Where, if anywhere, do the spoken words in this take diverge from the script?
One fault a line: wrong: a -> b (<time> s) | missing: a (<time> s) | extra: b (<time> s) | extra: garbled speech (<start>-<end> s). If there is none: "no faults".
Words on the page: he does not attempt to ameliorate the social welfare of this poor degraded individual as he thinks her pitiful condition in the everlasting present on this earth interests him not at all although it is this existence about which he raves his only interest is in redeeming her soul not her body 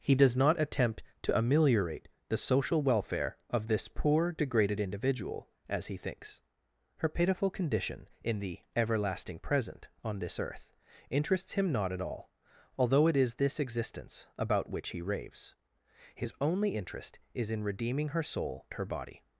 missing: not (18.6 s)